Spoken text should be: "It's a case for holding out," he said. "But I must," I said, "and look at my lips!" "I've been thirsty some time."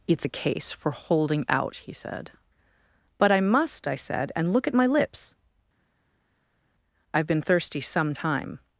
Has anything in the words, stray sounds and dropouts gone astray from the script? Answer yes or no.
no